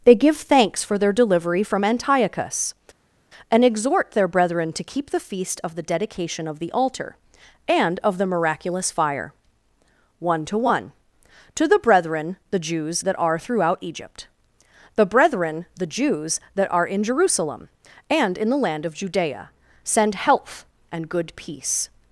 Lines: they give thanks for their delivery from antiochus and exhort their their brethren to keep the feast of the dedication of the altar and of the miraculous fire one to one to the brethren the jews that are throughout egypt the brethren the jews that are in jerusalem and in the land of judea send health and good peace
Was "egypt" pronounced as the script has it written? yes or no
yes